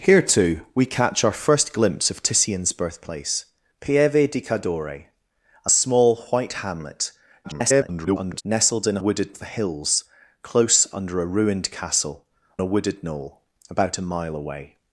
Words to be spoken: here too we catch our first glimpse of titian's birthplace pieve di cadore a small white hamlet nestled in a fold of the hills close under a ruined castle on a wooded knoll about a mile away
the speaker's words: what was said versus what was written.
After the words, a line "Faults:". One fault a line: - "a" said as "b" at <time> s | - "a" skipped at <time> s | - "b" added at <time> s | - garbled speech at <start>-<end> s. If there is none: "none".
here too we catch our first glimpse of titian's birthplace pieve di cadore a small white hamlet [garbled] nestled in a wooded of the hills close under a ruined castle a wooded knoll about a mile away
Faults:
- garbled speech at 7.4-8.4 s
- "fold" said as "wooded" at 9.0 s
- "on" skipped at 12.3 s